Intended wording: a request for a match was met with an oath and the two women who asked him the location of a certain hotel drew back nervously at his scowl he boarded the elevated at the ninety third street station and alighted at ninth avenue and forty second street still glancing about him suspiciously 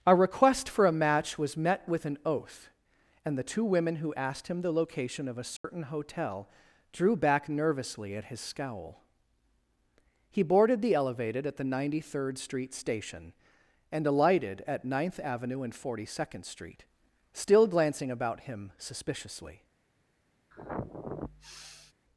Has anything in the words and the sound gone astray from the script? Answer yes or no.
yes